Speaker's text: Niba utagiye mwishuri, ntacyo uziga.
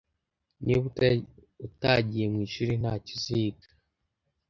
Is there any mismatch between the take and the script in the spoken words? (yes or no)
no